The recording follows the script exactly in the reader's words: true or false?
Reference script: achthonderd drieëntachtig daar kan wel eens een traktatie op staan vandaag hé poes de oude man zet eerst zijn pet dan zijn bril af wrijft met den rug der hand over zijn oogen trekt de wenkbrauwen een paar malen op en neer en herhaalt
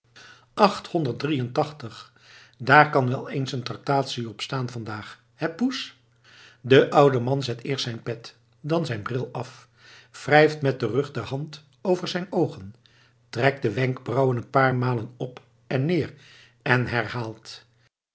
true